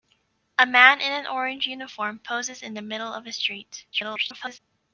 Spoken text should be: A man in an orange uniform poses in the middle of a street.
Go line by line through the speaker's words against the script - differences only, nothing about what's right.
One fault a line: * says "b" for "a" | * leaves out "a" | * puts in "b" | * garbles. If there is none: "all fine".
* garbles